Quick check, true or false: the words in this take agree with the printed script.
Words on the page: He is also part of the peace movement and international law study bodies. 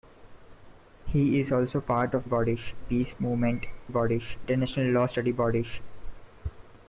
false